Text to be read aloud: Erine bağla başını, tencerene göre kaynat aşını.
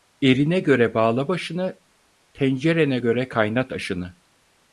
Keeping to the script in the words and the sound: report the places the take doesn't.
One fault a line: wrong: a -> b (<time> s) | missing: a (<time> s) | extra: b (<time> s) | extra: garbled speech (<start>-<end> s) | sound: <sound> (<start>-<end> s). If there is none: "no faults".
extra: göre (0.6 s)